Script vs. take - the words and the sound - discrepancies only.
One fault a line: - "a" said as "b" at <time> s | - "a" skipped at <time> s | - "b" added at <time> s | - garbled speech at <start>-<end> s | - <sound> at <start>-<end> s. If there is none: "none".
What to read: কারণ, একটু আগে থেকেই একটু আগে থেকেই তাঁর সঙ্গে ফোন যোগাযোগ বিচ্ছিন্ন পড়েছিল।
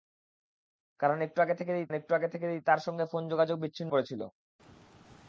none